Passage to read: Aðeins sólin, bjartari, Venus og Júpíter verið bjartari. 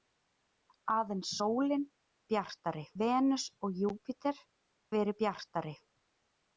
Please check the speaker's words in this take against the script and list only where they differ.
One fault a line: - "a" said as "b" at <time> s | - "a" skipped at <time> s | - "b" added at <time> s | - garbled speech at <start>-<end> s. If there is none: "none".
none